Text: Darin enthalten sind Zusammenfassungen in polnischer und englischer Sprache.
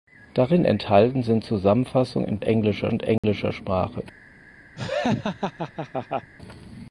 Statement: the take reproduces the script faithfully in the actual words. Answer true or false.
false